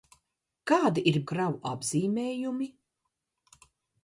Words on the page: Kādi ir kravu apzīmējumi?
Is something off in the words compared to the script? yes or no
no